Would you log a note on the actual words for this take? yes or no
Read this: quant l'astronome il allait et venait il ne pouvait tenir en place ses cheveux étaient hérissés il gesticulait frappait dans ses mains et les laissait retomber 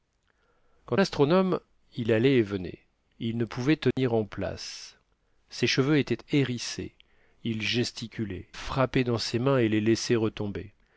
no